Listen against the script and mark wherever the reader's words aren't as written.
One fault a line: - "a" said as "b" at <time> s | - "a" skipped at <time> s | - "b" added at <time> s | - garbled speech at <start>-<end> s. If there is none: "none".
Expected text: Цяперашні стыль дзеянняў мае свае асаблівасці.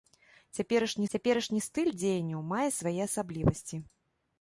- "цяперашні" added at 1.1 s